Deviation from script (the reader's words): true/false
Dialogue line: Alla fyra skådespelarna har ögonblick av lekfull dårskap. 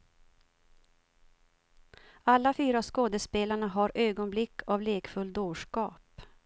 false